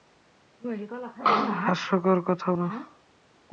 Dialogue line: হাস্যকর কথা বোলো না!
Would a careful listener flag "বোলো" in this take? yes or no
yes